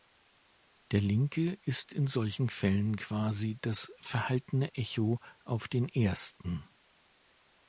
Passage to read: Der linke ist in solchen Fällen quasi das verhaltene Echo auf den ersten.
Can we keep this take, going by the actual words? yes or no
yes